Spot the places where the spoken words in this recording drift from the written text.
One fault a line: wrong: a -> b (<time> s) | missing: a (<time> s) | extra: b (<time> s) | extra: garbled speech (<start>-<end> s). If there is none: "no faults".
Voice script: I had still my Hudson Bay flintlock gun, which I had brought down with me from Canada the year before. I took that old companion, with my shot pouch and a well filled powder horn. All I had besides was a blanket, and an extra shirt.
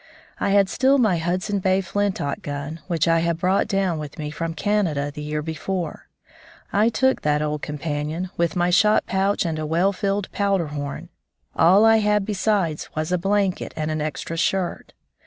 no faults